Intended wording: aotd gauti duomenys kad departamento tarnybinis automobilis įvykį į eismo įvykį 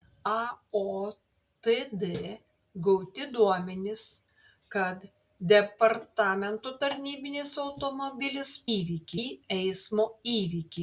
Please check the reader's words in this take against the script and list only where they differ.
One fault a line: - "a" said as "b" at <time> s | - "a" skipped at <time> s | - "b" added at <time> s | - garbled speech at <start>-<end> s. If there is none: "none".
none